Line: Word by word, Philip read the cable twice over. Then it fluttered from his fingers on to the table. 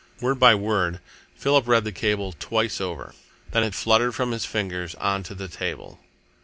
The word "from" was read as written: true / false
true